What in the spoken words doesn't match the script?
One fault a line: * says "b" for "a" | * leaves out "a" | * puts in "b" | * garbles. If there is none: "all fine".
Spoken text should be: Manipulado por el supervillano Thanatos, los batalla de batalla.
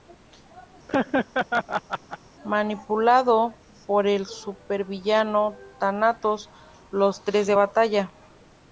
* says "tres" for "batalla"